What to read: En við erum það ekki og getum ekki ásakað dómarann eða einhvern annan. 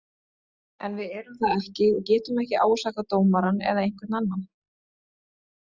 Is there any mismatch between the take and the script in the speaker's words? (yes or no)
no